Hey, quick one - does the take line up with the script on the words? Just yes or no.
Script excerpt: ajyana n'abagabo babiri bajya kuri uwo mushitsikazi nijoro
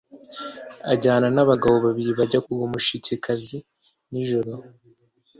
no